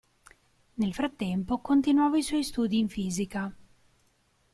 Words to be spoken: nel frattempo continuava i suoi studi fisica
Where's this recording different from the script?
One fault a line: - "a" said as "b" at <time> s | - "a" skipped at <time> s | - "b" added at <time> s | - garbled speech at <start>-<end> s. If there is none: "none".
- "in" added at 2.8 s